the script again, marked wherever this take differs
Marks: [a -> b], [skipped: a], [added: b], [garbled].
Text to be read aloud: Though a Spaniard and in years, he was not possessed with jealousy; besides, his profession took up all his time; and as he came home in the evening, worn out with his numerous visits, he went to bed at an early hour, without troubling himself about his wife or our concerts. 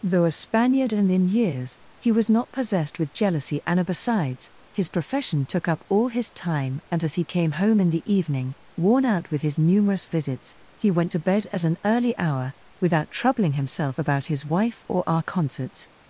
Though a Spaniard and in years, he was not possessed with jealousy; [added: and] besides, his profession took up all his time; and as he came home in the evening, worn out with his numerous visits, he went to bed at an early hour, without troubling himself about his wife or our concerts.